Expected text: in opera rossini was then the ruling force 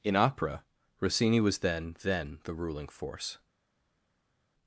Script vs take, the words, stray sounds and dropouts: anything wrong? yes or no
yes